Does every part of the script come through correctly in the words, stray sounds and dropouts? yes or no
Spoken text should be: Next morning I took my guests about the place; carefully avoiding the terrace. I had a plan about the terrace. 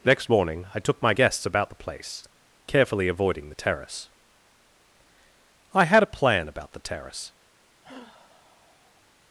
no